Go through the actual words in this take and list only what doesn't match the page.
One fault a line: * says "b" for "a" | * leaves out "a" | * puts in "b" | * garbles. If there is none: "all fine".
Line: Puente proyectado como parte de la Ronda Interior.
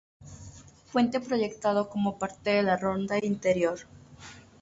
all fine